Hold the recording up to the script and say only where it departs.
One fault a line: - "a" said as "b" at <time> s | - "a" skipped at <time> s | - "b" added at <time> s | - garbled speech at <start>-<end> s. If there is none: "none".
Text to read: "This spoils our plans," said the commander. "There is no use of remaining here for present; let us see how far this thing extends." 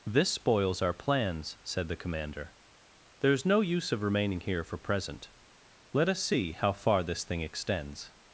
none